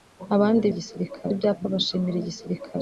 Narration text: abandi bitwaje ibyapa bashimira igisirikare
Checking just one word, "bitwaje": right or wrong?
wrong